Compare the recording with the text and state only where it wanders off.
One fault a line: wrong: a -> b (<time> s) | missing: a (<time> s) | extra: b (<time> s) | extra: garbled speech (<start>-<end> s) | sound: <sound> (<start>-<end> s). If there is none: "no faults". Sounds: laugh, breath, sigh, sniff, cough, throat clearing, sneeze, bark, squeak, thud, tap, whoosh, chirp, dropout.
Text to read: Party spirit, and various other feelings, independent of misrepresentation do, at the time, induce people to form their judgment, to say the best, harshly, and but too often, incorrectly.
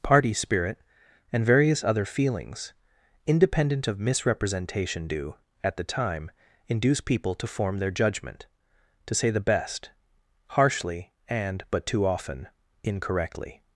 no faults